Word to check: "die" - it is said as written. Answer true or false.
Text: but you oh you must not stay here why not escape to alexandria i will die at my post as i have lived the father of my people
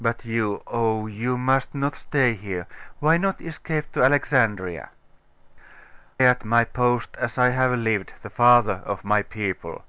false